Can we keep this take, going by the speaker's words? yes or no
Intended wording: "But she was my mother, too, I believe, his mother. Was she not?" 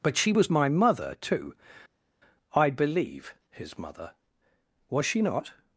yes